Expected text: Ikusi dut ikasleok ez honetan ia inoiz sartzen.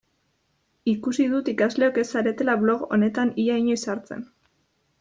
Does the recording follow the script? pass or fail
fail